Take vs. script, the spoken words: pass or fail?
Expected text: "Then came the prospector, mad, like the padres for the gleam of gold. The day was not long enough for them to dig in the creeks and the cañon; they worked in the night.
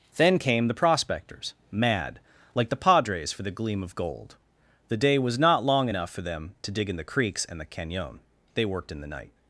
fail